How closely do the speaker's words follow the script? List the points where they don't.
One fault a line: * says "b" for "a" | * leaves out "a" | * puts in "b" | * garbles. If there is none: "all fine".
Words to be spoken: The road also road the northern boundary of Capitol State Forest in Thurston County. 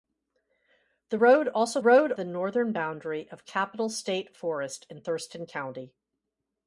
all fine